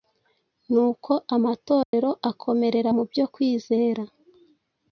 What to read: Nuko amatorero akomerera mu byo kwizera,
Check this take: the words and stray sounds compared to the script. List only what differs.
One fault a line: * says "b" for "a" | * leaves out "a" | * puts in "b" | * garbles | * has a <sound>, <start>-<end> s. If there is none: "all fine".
* has a dropout, 1.8-1.9 s